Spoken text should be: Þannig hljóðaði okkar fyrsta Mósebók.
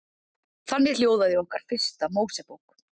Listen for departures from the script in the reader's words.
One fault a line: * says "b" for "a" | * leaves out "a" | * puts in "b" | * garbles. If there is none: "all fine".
all fine